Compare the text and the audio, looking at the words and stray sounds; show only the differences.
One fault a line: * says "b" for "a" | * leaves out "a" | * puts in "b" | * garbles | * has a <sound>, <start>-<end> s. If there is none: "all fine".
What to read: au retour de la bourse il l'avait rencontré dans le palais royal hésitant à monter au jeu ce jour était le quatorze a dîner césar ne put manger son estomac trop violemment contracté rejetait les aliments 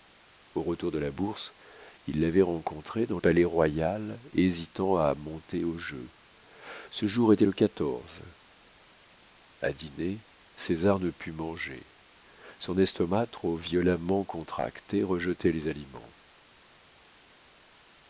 * leaves out "le"